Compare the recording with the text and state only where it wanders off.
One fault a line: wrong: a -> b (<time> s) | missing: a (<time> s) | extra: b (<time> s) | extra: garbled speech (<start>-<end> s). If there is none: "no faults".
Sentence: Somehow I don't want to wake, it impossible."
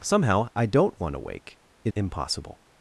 no faults